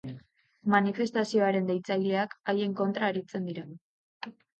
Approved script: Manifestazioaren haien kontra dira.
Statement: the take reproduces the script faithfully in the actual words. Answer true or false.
false